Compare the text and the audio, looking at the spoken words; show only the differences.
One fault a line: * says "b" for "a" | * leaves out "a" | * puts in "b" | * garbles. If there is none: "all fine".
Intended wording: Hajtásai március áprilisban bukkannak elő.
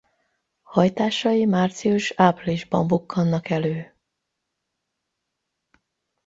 all fine